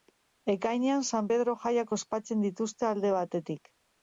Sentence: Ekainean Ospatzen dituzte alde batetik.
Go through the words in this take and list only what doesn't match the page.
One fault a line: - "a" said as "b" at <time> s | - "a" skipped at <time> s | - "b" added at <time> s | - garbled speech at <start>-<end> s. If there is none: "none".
- "San Pedro jaiak" added at 1.1 s